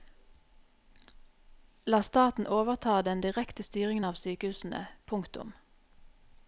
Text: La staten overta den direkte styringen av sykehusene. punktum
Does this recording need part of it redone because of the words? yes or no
no